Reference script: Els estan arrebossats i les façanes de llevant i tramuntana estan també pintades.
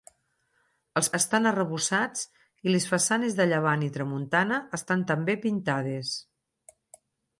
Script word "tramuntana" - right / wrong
right